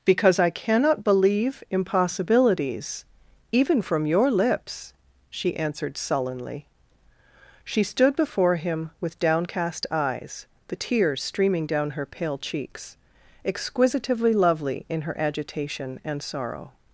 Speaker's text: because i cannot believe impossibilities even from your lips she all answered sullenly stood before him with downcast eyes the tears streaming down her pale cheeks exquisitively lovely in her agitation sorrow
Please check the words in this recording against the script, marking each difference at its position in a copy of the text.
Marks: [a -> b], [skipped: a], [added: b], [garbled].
because i cannot believe impossibilities even from your lips she [skipped: all] answered sullenly [added: she] stood before him with downcast eyes the tears streaming down her pale cheeks exquisitively lovely in her agitation [added: and] sorrow